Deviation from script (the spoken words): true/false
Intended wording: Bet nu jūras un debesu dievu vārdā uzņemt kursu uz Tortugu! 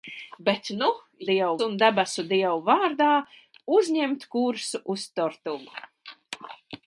true